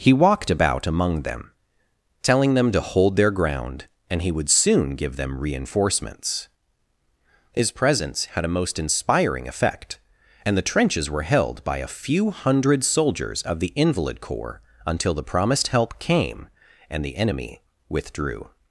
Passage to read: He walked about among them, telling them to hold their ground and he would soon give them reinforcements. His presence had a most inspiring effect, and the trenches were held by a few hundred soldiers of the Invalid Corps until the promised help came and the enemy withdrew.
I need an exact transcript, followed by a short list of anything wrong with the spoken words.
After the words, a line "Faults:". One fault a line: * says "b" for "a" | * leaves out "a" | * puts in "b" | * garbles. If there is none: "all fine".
He walked about among them, telling them to hold their ground and he would soon give them reinforcements. His presence had a most inspiring effect, and the trenches were held by a few hundred soldiers of the Invalid Corps until the promised help came and the enemy withdrew.
Faults:
all fine